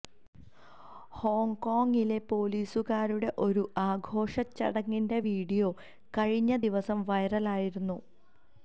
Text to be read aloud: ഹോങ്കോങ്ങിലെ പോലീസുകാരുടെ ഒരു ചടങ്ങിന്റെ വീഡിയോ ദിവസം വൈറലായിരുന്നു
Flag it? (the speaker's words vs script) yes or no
yes